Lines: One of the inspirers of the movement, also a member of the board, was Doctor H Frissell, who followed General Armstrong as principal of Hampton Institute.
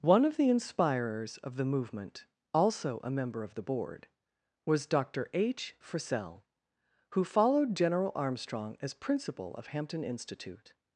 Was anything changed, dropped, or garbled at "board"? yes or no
no